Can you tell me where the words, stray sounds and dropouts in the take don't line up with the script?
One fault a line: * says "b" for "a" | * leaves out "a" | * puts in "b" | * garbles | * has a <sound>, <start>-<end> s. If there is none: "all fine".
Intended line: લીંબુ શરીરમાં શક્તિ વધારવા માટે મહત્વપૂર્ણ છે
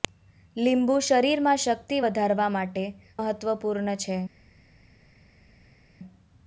all fine